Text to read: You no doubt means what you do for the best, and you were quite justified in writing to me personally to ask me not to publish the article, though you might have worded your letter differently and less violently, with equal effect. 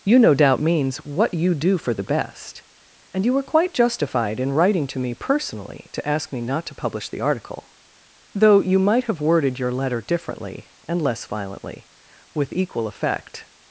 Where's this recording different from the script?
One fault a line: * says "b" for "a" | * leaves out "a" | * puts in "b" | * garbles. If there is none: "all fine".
all fine